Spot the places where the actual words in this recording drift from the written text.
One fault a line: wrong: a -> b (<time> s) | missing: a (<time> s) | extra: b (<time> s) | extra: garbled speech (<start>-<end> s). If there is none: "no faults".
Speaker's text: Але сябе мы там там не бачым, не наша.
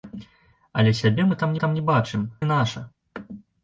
no faults